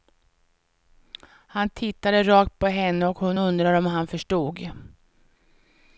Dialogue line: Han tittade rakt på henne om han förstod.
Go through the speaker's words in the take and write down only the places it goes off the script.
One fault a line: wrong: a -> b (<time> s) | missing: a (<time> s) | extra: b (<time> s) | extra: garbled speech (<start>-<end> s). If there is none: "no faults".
extra: och hon undrade (3.1 s)